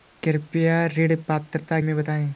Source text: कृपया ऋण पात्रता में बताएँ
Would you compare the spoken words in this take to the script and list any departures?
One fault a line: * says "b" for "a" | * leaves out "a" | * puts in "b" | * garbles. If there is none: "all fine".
all fine